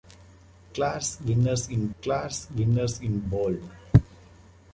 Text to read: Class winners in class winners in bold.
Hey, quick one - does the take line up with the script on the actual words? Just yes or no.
yes